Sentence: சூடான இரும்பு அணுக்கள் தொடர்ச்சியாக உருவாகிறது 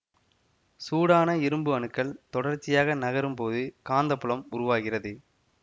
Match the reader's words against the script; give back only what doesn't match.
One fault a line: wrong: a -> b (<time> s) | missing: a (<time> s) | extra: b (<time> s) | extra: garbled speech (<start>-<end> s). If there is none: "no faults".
extra: நகரும் போது காந்தப்புலம் (3.0 s)